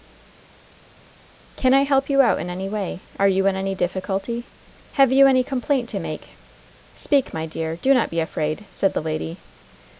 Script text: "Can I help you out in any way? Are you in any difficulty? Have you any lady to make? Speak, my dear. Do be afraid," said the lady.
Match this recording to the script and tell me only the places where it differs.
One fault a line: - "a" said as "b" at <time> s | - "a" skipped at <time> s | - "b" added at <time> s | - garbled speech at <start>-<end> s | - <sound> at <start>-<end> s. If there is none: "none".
- "lady" said as "complaint" at 5.4 s
- "not" added at 7.9 s